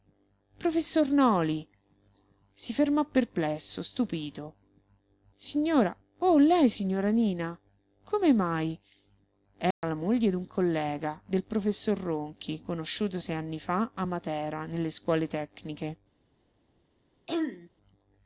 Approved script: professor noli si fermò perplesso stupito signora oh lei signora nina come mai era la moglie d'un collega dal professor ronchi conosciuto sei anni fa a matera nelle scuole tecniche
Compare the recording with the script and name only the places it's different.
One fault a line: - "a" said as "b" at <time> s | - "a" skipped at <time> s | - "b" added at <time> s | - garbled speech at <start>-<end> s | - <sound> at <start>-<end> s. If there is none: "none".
- dropout at 9.7-9.8 s
- "dal" said as "del" at 11.3 s
- throat clearing at 17.3-17.7 s